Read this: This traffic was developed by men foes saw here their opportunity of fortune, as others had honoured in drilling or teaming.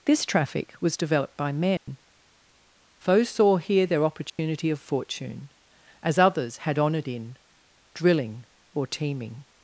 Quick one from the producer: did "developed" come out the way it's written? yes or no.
yes